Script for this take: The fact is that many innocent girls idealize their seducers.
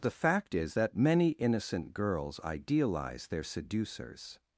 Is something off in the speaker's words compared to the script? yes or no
no